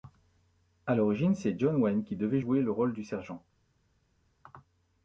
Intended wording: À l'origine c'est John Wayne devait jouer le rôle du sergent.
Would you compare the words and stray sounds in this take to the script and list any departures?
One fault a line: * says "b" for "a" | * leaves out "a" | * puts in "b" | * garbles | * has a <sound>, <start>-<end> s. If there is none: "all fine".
* puts in "qui"